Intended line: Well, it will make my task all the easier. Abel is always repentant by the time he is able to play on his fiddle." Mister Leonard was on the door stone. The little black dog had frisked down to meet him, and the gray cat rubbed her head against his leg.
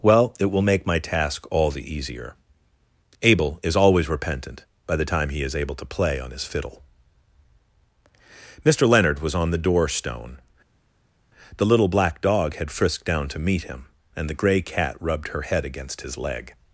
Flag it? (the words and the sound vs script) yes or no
no